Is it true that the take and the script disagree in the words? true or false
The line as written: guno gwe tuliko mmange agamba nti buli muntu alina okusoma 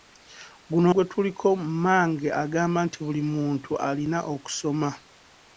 false